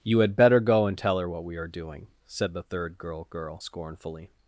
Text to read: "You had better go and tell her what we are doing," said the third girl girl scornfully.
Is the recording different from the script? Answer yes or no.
no